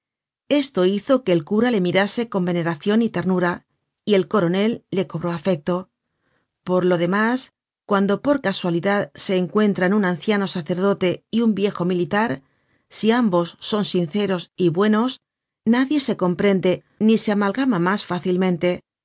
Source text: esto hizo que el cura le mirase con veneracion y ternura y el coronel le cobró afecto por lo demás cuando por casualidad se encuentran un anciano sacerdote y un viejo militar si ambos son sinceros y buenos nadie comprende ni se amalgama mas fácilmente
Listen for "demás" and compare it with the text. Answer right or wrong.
right